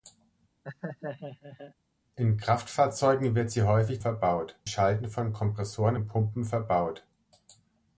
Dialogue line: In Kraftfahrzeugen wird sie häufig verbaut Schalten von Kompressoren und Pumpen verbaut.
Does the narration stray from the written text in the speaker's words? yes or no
no